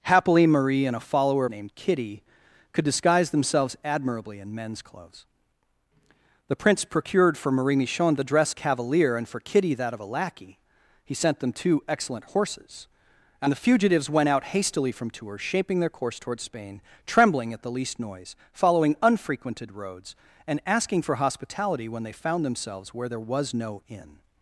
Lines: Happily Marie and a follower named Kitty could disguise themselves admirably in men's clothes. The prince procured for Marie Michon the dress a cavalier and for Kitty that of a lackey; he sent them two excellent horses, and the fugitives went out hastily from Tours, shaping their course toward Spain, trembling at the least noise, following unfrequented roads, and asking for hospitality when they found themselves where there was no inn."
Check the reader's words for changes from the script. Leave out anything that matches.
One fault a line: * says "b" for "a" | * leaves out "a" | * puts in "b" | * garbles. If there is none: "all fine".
all fine